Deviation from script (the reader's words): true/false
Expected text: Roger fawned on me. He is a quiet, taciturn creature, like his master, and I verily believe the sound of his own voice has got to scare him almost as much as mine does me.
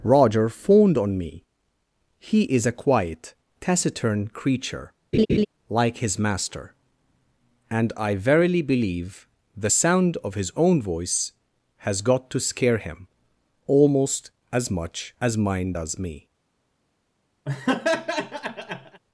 false